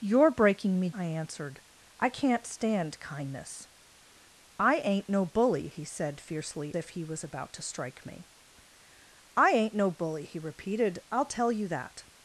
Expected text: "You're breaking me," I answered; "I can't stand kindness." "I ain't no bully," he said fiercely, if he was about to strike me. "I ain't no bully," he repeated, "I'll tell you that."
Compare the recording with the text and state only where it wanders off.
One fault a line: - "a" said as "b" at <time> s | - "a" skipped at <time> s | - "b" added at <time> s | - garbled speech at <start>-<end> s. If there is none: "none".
none